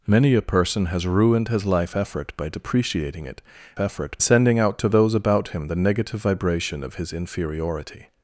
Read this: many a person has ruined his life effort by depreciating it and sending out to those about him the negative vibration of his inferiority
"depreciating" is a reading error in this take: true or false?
false